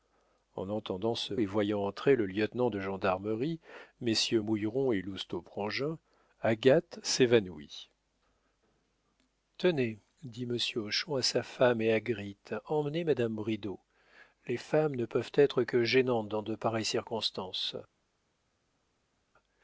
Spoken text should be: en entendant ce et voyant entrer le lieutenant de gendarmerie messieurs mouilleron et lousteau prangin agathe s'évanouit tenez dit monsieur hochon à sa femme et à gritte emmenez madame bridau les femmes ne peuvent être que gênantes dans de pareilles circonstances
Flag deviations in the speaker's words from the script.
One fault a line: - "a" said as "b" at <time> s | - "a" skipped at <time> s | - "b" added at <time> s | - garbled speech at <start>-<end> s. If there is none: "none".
none